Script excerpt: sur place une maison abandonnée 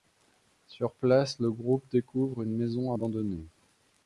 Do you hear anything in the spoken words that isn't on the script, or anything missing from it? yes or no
yes